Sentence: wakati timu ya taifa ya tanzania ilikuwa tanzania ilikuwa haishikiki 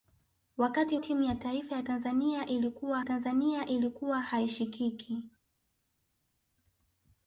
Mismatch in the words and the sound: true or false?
false